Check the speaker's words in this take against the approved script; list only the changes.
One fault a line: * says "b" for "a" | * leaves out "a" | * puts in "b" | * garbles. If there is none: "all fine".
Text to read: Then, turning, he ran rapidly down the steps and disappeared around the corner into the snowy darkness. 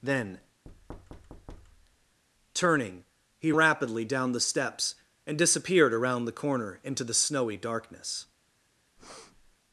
* leaves out "ran"